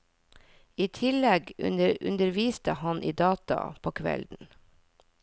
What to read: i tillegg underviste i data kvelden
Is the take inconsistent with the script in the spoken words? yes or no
yes